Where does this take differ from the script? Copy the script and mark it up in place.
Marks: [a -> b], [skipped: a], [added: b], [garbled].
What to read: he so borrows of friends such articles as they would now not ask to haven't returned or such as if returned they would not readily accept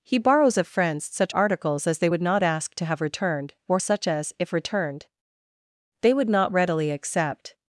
he [skipped: so] borrows of friends such articles as they would [skipped: now] not ask to [haven't -> have] returned or such as if returned they would not readily accept